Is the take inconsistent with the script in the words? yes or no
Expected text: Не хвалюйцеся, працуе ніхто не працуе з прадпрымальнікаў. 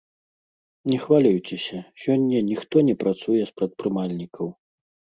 yes